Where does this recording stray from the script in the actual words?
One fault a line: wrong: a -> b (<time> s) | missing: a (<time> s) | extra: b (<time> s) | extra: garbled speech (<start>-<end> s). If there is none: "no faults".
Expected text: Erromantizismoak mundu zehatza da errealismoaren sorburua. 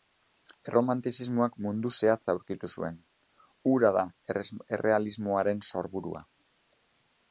extra: aurkitu zuen hura (2.4 s)